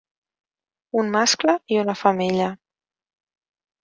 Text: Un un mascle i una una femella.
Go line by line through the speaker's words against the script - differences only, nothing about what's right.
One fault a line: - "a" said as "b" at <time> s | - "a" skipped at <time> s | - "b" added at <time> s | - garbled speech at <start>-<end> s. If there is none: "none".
- "un" skipped at 1.1 s
- "una" skipped at 2.0 s